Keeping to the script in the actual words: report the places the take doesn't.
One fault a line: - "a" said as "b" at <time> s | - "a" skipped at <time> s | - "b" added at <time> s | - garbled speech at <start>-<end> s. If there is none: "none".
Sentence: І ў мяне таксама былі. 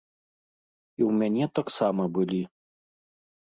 none